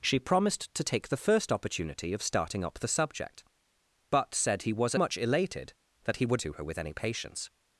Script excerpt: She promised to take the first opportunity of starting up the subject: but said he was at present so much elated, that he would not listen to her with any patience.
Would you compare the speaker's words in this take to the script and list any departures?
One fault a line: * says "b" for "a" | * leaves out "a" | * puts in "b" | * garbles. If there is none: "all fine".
* leaves out "at present so"
* leaves out "not listen"